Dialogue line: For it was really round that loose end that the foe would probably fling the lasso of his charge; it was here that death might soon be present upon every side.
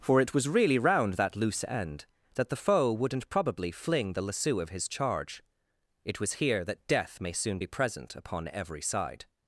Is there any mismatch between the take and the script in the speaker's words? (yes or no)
yes